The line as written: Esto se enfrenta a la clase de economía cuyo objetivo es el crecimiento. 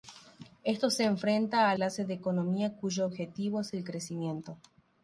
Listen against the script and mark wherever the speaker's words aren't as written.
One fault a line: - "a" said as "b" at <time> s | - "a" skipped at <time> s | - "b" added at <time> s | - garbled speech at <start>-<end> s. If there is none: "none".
- "la" skipped at 1.8 s